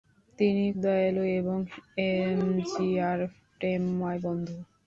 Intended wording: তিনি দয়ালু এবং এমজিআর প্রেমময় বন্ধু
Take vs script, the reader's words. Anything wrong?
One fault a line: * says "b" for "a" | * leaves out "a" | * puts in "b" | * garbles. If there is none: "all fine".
all fine